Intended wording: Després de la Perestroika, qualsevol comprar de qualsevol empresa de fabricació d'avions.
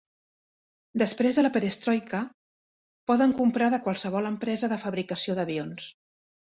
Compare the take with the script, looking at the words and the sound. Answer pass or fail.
fail